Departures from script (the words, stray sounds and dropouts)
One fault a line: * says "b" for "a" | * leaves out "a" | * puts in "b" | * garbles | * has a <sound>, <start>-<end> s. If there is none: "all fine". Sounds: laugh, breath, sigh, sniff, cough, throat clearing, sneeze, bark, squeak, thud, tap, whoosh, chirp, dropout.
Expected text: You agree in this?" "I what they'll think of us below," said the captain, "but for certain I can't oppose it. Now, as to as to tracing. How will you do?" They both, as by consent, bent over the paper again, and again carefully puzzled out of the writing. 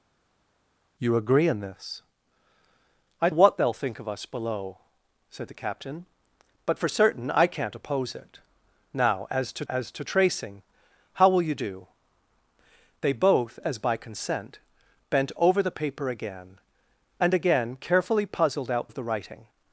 all fine